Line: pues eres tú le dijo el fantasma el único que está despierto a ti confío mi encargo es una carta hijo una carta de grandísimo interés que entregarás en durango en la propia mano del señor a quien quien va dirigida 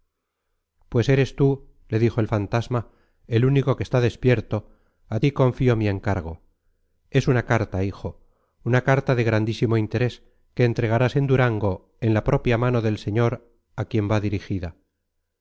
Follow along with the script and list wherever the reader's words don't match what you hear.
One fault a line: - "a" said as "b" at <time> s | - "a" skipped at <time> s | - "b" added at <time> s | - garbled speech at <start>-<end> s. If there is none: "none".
- "quien" skipped at 14.1 s